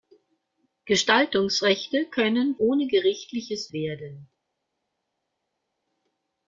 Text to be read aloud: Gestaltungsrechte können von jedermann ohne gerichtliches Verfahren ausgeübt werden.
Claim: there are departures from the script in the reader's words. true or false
true